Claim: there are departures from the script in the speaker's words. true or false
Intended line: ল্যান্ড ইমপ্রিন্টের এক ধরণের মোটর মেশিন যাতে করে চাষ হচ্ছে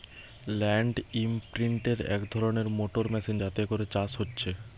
false